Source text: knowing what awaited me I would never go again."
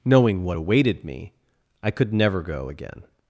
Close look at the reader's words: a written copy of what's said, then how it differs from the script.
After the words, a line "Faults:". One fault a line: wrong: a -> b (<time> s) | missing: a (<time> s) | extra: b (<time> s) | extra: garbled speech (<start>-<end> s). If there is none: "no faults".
knowing what awaited me I could never go again."
Faults:
wrong: would -> could (1.9 s)